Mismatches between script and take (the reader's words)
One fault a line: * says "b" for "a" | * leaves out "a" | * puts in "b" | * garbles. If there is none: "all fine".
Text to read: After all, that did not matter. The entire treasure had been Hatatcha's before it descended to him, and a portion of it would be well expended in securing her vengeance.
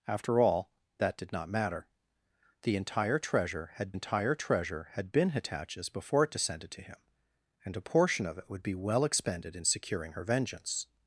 * puts in "entire treasure had"